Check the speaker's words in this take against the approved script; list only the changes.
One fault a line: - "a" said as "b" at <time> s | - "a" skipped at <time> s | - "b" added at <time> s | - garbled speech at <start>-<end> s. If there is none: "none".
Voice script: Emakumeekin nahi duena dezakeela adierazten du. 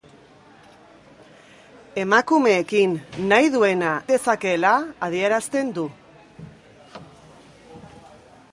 none